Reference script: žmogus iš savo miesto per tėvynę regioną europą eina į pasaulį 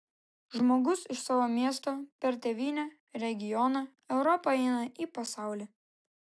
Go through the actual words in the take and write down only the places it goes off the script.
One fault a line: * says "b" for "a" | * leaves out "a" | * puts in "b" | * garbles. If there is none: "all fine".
all fine